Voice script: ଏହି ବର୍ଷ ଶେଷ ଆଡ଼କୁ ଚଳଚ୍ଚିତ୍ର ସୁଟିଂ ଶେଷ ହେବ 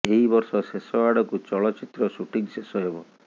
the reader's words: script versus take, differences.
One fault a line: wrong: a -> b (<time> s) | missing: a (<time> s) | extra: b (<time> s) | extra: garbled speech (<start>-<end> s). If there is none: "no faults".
no faults